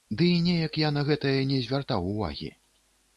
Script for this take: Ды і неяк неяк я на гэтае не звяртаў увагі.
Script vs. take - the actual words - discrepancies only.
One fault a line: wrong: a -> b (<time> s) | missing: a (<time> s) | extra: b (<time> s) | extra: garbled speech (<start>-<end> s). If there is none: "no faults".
missing: неяк (0.8 s)